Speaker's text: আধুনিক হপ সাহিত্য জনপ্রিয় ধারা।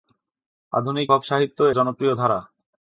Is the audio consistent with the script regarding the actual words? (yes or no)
yes